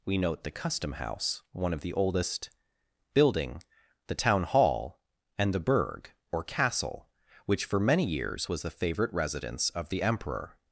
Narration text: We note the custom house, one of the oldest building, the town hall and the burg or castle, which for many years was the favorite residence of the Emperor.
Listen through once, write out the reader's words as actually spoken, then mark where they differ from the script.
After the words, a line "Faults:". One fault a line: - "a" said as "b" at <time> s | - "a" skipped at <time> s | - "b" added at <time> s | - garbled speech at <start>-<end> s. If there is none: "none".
We note the custom house, one of the oldest building, the town hall and the burg or castle, which for many years was the favorite residence of the Emperor.
Faults:
none